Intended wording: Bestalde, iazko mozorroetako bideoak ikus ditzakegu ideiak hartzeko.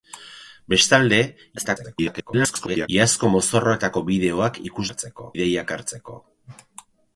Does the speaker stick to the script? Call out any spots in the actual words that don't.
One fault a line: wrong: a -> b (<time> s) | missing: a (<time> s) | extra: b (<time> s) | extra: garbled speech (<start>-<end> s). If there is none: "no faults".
extra: garbled speech (1.6-2.9 s)
wrong: ditzakegu -> hartzeko (4.9 s)